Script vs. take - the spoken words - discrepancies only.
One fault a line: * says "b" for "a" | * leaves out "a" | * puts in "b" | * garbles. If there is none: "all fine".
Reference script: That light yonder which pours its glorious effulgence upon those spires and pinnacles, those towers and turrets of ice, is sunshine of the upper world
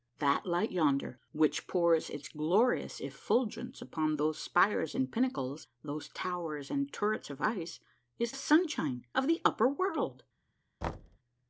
all fine